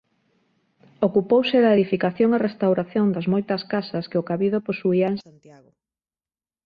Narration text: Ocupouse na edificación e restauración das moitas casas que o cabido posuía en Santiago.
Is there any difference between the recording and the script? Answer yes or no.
yes